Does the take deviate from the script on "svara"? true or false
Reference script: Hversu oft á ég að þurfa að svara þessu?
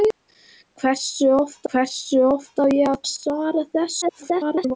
false